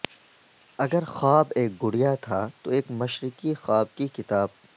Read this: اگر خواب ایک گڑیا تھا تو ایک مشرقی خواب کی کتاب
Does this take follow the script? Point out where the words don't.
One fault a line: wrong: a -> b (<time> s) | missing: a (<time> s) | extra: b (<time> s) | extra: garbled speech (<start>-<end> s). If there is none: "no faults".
no faults